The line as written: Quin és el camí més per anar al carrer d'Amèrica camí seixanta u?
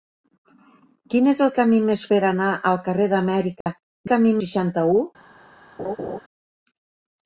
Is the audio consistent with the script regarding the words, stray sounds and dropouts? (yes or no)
no